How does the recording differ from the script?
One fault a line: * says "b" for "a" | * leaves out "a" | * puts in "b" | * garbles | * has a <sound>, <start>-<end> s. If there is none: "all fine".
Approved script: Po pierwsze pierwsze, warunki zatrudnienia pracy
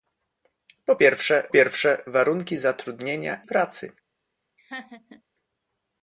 * has a laugh, 4.6-5.2 s